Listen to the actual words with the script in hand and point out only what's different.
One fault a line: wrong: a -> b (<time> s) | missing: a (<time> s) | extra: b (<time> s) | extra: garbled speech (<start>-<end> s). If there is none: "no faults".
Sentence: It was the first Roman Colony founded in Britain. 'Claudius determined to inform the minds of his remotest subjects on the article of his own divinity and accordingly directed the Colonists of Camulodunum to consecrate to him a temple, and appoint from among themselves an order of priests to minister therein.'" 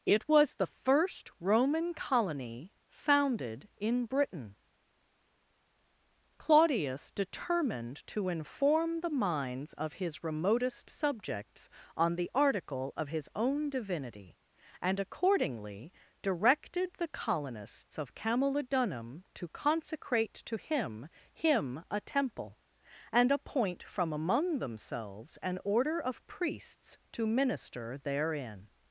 extra: him (21.3 s)